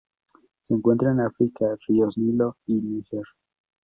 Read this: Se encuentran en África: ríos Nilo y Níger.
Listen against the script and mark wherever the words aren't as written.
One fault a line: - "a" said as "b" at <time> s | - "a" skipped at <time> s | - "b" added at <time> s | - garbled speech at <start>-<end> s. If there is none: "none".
none